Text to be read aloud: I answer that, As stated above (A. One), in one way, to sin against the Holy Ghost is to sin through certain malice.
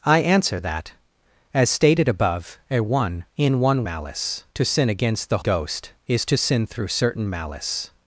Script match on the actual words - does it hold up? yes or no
no